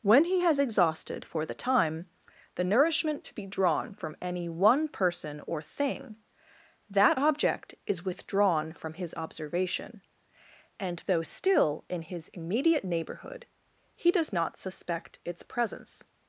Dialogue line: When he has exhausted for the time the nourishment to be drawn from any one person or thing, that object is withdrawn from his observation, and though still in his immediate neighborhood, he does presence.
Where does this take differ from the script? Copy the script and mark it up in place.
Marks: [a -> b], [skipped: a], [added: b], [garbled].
When he has exhausted for the time the nourishment to be drawn from any one person or thing, that object is withdrawn from his observation, and though still in his immediate neighborhood, he does [added: not suspect its] presence.